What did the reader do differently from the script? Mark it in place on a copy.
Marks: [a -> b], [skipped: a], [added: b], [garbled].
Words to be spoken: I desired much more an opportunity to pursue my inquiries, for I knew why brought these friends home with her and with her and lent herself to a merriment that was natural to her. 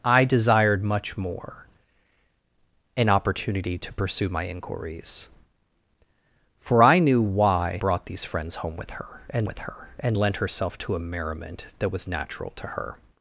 I desired much more an opportunity to pursue my inquiries, for I knew why brought these friends home with her and with her and lent herself to a merriment that was natural to her.